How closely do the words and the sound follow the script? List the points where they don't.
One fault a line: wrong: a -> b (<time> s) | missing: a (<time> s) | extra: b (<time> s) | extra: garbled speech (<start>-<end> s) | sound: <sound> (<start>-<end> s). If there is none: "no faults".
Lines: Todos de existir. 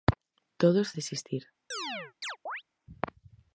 sound: chirp (1.7-2.6 s)